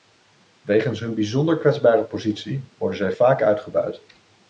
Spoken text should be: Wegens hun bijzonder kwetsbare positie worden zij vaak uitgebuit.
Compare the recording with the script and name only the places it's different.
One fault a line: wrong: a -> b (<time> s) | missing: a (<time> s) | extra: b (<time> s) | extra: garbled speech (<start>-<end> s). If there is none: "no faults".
no faults